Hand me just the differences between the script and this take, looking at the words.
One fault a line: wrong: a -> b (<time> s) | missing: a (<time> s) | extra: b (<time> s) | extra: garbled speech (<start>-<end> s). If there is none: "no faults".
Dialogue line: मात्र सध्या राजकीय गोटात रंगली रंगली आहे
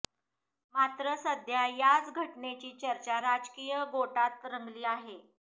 extra: याच घटनेची चर्चा (1.7 s)
missing: रंगली (4.9 s)